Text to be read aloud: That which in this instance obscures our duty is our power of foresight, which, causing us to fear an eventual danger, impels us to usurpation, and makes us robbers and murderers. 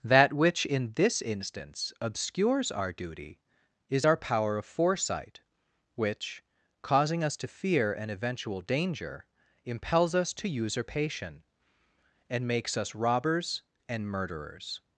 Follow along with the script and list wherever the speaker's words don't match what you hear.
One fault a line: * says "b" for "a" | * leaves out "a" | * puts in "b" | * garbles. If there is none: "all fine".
all fine